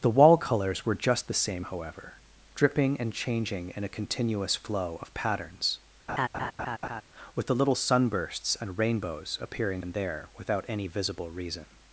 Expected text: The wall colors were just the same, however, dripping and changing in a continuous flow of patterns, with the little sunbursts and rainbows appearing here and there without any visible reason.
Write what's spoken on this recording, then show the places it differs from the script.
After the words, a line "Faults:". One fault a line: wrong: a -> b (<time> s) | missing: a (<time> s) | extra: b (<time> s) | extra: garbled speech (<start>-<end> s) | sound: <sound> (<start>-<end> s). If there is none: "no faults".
The wall colors were just the same, however, dripping and changing in a continuous flow of patterns, with the little sunbursts and rainbows appearing and there without any visible reason.
Faults:
sound: laugh (6.1-7.0 s)
missing: here (9.8 s)